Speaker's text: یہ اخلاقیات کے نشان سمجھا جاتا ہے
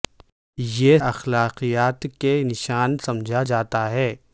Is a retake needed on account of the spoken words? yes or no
no